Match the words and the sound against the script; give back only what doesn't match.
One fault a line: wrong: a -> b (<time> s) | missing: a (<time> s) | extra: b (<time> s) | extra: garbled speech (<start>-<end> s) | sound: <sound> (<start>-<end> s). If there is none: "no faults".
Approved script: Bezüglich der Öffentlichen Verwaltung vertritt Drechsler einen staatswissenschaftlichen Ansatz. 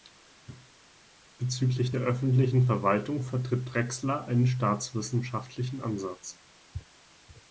no faults